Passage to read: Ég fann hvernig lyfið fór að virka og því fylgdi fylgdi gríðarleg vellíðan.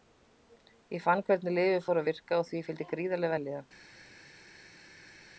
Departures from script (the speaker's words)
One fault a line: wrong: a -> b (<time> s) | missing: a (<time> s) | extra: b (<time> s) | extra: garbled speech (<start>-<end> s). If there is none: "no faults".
missing: fylgdi (2.9 s)